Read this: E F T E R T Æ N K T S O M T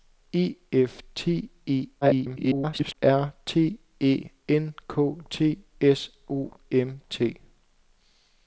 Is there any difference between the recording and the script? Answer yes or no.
yes